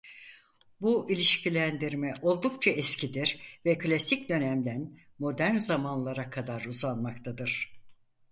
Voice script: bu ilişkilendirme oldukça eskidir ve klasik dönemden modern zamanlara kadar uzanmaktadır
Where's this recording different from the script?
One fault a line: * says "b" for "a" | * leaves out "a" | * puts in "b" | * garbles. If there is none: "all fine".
all fine